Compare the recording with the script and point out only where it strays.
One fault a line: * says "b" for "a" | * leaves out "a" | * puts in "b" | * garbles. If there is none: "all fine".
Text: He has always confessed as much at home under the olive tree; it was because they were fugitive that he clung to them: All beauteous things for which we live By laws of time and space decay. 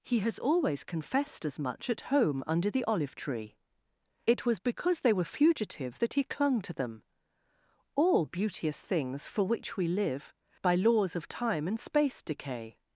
all fine